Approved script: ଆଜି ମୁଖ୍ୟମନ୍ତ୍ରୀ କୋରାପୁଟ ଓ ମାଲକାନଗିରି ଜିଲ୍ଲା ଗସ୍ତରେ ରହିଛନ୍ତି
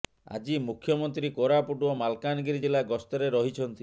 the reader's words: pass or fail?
pass